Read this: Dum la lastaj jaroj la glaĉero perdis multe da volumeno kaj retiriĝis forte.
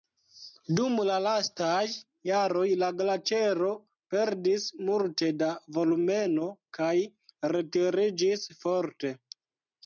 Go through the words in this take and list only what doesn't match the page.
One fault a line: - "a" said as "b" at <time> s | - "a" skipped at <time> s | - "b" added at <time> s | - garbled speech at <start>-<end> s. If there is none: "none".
none